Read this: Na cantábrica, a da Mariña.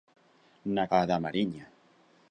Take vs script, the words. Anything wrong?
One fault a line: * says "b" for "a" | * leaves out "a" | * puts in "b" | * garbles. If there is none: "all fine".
* leaves out "cantábrica"